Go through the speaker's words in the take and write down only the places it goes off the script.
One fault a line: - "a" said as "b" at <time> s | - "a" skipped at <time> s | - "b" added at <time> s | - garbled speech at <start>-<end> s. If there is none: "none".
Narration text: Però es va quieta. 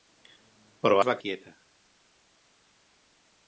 none